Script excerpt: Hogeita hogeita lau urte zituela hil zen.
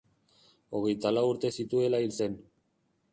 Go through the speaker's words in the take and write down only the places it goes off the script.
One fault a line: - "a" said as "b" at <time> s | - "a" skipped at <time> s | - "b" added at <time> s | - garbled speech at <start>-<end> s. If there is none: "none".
- "hogeita" skipped at 1.1 s